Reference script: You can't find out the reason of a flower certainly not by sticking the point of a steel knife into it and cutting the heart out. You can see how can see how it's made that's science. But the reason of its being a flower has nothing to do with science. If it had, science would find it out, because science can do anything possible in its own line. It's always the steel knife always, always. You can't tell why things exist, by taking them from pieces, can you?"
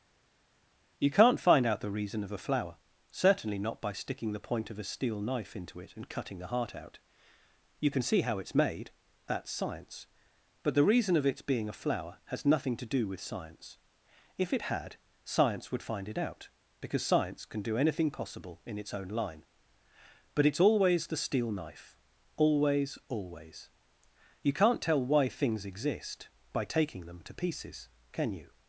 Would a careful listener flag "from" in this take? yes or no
yes